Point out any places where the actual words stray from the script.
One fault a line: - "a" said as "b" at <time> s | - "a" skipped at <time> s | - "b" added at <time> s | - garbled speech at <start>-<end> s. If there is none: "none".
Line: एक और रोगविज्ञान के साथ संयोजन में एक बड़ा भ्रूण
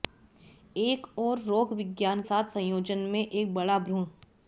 - "के" skipped at 2.2 s